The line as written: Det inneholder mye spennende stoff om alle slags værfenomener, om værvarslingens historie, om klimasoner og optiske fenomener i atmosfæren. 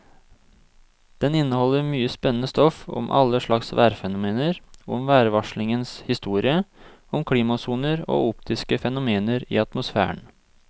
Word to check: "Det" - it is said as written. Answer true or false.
false